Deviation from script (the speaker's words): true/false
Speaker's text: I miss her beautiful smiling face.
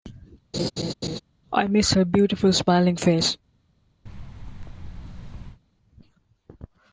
false